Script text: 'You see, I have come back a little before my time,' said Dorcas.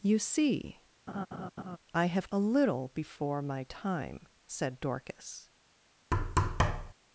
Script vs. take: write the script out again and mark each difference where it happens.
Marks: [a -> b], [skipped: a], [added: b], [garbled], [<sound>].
'You see, [laugh] I have [skipped: come back] a little before my time,' said Dorcas. [thud]